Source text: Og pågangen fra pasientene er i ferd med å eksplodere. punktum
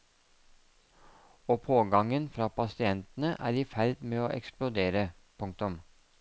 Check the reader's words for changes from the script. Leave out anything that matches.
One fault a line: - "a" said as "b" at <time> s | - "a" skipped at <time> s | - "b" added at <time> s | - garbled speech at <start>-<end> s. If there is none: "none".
none